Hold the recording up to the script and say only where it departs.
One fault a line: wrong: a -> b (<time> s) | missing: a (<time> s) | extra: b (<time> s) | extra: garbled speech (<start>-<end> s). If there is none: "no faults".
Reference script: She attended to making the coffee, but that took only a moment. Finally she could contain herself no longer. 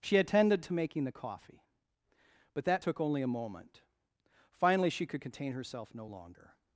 no faults